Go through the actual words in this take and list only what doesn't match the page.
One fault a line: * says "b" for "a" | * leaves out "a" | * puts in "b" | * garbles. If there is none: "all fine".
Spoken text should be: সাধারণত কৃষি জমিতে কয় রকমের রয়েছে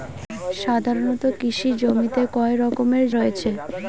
all fine